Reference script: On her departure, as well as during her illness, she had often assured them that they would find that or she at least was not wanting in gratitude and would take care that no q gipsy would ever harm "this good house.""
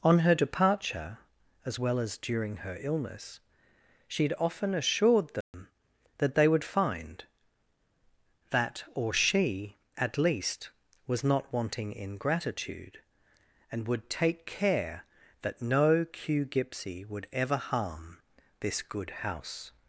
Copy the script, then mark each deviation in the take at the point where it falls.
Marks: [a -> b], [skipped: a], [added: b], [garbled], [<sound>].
On her departure, as well as during her illness, she had often assured them [dropout] that they would find that or she at least was not wanting in gratitude and would take care that no q gipsy would ever harm "this good house.""